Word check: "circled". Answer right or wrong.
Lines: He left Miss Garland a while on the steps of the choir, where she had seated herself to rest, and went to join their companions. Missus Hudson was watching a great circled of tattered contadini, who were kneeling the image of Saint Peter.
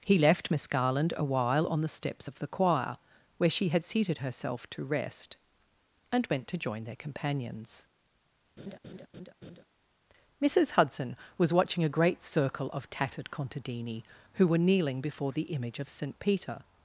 wrong